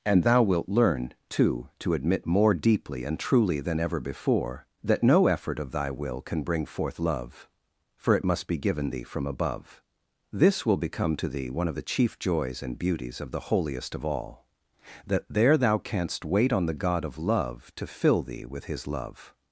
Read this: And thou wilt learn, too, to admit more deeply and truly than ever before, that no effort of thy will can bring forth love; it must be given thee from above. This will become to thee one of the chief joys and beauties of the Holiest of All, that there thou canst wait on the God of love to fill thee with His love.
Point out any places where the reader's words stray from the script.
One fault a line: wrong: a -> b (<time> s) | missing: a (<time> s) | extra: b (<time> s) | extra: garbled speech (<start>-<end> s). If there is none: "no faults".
extra: for (8.0 s)